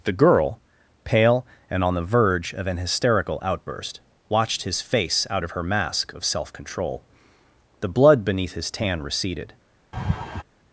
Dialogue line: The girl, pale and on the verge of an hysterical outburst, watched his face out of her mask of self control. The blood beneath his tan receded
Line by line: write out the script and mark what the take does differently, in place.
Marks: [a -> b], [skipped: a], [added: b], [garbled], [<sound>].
The girl, pale and on the verge of an hysterical outburst, watched his face out of her mask of self control. The blood beneath his tan receded [laugh]